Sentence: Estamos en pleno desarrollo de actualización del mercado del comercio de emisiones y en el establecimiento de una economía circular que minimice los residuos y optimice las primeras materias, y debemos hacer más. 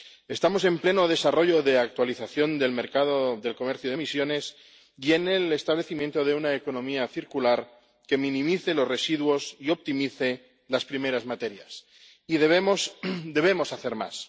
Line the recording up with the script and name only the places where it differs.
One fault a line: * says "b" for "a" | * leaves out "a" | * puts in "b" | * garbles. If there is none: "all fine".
all fine